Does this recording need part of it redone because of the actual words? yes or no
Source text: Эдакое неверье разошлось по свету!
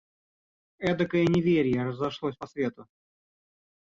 no